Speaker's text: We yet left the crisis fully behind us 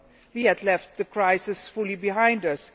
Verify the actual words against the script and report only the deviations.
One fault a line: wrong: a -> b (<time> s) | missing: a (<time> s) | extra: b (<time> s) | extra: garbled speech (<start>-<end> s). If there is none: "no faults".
no faults